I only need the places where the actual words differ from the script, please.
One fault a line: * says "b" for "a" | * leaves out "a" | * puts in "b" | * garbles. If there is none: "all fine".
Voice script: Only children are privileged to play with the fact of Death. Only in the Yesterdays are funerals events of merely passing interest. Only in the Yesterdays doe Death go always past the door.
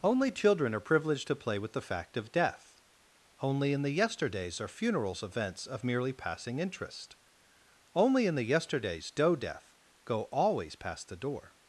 all fine